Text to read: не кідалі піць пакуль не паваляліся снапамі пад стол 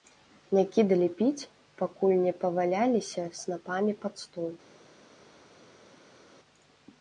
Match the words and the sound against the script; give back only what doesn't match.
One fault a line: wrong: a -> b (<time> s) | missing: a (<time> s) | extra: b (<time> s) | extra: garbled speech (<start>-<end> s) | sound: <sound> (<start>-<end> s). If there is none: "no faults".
no faults